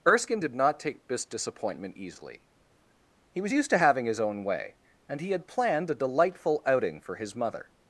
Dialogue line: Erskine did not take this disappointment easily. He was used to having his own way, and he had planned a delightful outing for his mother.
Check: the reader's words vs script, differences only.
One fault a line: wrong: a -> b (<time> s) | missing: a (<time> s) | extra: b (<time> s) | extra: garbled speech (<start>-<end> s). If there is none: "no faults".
no faults